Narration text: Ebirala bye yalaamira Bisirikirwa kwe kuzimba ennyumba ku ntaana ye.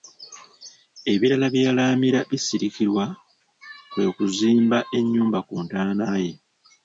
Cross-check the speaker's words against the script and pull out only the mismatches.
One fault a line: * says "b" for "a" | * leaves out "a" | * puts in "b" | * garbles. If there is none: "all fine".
all fine